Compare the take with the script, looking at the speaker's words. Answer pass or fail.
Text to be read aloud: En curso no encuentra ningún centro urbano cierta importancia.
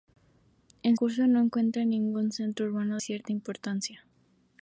pass